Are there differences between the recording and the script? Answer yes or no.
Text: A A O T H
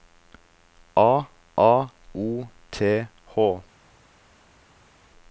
no